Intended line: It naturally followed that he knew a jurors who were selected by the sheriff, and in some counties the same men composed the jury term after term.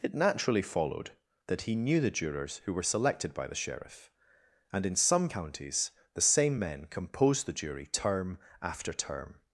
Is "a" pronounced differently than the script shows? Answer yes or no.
yes